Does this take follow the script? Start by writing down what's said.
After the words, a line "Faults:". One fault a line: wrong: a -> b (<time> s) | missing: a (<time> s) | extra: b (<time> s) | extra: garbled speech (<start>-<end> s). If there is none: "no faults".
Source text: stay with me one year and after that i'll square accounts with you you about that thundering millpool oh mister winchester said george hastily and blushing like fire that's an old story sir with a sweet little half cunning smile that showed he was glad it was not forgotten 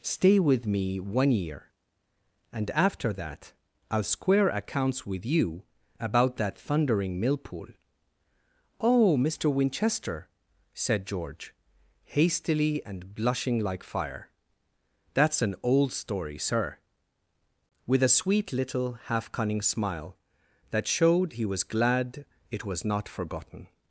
stay with me one year and after that i'll square accounts with you about that thundering millpool oh mister winchester said george hastily and blushing like fire that's an old story sir with a sweet little half cunning smile that showed he was glad it was not forgotten
Faults:
missing: you (5.6 s)